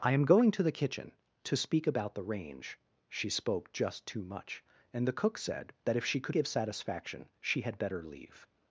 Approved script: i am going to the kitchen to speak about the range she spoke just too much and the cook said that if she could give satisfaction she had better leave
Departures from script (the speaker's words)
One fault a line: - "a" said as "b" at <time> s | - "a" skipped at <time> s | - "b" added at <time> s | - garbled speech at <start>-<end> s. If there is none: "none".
none